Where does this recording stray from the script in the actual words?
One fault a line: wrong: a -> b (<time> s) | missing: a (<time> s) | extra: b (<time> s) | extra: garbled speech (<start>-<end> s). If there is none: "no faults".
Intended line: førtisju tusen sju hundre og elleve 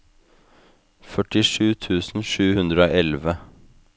no faults